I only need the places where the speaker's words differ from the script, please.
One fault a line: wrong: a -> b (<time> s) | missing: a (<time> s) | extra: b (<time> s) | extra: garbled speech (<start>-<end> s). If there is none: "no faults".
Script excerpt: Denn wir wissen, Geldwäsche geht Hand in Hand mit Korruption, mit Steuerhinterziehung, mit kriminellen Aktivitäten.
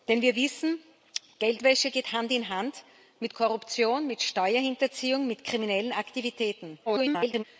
extra: garbled speech (6.9-7.4 s)